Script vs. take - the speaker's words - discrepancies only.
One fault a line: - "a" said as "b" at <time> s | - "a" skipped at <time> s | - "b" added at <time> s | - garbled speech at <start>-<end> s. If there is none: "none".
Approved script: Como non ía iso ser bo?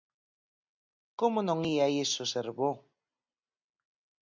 none